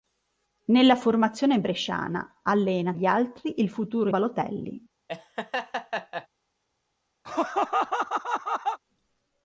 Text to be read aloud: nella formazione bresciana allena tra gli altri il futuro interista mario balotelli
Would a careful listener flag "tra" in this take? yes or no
yes